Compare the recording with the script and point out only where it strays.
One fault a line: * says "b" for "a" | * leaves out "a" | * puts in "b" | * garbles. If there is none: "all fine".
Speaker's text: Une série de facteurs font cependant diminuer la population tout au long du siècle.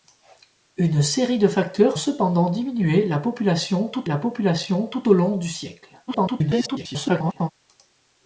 * leaves out "font"
* puts in "la population tout"
* garbles